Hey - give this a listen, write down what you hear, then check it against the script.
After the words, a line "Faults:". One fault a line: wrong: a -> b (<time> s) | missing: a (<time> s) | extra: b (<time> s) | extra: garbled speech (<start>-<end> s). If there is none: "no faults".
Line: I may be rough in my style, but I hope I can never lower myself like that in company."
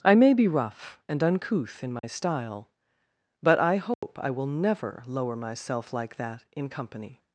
I may be rough and uncouth in my style, but I hope I will never lower myself like that in company."
Faults:
extra: and uncouth (1.1 s)
wrong: can -> will (4.3 s)